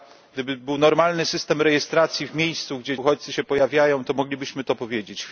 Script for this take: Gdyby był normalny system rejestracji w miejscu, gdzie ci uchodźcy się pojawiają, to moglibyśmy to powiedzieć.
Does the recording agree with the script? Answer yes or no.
no